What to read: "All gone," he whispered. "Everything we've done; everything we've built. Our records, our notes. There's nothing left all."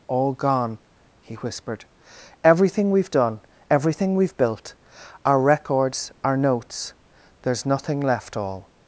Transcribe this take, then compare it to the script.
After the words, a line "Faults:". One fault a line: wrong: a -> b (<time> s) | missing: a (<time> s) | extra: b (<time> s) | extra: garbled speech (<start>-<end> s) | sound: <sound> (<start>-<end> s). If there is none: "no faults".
"All gone," he whispered. "Everything we've done; everything we've built. Our records, our notes. There's nothing left all."
Faults:
no faults